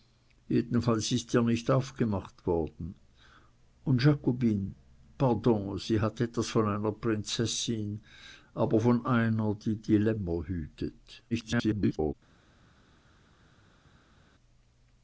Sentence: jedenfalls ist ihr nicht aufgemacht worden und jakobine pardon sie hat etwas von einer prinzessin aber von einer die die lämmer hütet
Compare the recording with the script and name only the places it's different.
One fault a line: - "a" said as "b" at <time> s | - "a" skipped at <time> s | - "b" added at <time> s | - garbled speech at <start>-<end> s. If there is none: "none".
- garbled speech at 11.3-12.1 s